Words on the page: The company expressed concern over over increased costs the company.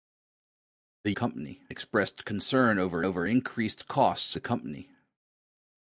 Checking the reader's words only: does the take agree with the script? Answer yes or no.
yes